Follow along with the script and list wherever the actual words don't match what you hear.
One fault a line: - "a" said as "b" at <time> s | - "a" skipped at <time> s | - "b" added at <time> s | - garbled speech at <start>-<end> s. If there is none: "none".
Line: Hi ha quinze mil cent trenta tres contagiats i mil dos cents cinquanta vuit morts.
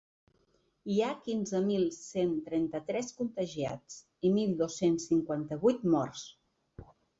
none